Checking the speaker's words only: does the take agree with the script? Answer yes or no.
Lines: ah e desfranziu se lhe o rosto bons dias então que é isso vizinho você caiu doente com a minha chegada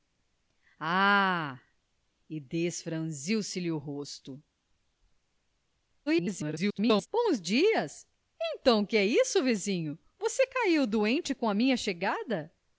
no